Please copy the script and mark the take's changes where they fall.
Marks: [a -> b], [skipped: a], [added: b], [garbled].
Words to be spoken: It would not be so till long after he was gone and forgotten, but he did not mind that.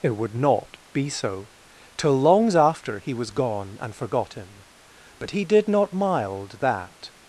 It would not be so till [long -> longs] after he was gone and forgotten, but he did not [mind -> mild] that.